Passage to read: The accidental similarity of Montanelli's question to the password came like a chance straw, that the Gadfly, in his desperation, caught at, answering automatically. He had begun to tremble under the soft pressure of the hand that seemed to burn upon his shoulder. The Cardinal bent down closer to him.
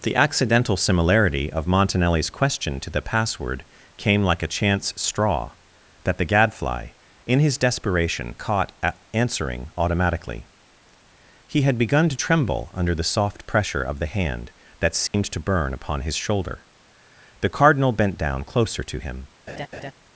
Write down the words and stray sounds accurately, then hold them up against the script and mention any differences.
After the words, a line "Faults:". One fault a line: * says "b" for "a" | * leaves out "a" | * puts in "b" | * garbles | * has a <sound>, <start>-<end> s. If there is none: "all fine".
The accidental similarity of Montanelli's question to the password came like a chance straw, that the Gadfly, in his desperation, caught at, answering automatically. He had begun to tremble under the soft pressure of the hand that seemed to burn upon his shoulder. The Cardinal bent down closer to him.
Faults:
* has a dropout, 15.1-15.1 s
* has a laugh, 19.5-19.9 s